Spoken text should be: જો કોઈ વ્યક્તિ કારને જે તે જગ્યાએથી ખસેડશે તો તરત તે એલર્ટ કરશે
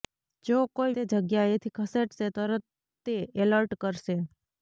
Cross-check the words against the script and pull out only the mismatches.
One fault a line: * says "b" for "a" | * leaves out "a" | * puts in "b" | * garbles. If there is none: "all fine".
* leaves out "વ્યક્તિ કારને જે"
* leaves out "તો"